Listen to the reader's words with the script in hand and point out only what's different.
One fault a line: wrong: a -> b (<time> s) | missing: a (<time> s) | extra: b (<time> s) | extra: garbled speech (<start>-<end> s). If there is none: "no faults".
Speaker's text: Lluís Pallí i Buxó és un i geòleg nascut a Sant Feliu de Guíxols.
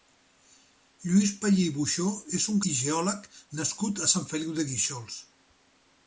no faults